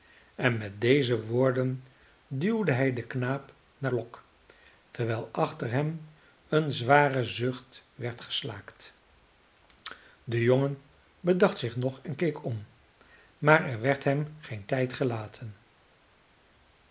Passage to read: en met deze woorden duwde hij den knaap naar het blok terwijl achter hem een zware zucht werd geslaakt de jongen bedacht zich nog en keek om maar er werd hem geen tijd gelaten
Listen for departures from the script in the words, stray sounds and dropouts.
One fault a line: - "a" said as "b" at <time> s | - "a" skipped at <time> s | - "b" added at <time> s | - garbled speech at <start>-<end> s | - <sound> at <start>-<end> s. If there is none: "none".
- "het" skipped at 3.9 s